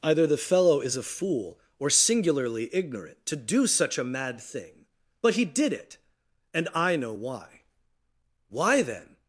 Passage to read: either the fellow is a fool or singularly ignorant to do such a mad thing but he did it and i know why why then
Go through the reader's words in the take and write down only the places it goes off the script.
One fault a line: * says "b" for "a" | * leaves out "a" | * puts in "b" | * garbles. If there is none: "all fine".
all fine